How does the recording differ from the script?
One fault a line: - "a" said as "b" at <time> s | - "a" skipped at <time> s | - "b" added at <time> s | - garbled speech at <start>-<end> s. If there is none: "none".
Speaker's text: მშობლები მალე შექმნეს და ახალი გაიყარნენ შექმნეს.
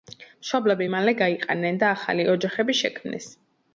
- "შექმნეს" said as "გაიყარნენ" at 1.2 s
- "გაიყარნენ" said as "ოჯახები" at 2.4 s